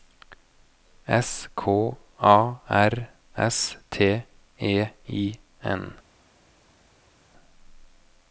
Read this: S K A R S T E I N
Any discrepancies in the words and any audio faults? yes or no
no